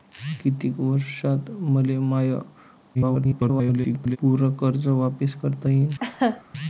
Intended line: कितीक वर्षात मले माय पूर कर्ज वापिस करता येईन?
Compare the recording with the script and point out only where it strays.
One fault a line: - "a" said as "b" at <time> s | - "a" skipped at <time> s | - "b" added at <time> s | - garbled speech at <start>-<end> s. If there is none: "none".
- garbled speech at 2.9-4.2 s